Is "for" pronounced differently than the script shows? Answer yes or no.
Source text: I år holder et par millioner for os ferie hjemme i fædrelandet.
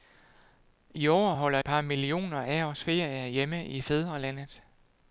yes